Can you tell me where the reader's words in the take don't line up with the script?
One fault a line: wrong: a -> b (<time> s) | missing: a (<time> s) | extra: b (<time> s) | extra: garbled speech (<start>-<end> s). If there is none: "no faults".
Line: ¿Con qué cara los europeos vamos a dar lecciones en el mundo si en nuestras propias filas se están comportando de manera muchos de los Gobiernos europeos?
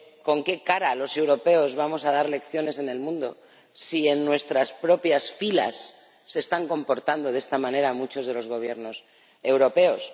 extra: esta (7.4 s)